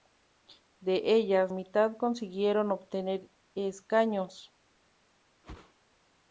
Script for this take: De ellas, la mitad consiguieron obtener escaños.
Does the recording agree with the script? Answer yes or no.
no